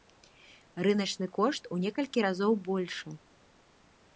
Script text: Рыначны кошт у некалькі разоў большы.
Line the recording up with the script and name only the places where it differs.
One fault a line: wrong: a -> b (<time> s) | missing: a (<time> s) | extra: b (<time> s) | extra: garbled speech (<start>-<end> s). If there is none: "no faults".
no faults